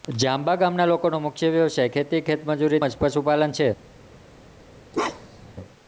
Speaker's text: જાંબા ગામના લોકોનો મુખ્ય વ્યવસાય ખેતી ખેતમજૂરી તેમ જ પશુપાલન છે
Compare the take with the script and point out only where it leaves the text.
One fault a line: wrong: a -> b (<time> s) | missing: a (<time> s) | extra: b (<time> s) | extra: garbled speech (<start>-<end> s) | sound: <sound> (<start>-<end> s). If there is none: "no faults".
missing: તેમ (2.8 s)
sound: bark (4.9-5.5 s)